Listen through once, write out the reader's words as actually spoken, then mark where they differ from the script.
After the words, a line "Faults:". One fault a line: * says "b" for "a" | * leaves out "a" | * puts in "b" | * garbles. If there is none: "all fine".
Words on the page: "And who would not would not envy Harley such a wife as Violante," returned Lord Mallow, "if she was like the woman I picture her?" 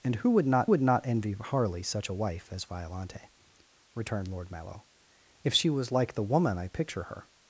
"And who would not would not envy Harley such a wife as Violante," returned Lord Mallow, "if she was like the woman I picture her?"
Faults:
all fine